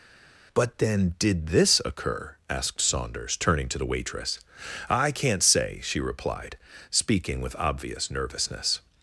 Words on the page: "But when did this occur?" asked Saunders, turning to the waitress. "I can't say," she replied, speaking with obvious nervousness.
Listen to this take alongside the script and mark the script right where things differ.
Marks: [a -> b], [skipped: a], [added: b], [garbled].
"But [when -> then] did this occur?" asked Saunders, turning to the waitress. "I can't say," she replied, speaking with obvious nervousness.